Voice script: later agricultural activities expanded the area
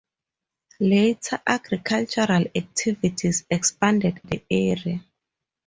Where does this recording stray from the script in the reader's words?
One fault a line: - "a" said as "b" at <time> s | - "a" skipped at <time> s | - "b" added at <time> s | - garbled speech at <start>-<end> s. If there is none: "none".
none